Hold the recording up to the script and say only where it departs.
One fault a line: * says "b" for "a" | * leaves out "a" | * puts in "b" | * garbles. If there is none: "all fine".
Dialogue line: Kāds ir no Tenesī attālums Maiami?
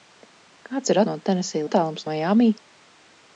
all fine